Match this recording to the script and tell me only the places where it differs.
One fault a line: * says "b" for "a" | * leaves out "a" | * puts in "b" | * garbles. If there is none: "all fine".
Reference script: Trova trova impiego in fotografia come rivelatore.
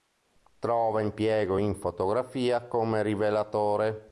* leaves out "trova"